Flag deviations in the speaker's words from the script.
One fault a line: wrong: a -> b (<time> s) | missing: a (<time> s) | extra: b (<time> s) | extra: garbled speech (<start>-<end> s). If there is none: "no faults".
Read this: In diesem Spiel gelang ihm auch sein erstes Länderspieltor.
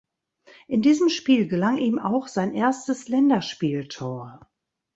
no faults